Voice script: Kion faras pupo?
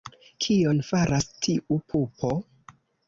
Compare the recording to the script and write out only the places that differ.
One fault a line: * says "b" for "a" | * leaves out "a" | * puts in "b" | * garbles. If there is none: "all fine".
* puts in "tiu"